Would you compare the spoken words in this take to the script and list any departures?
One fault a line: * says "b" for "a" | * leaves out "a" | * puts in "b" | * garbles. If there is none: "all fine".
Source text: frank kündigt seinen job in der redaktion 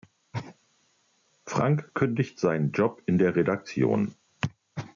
all fine